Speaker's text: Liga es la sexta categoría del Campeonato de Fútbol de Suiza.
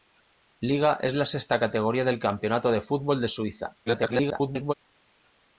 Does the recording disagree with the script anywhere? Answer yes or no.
yes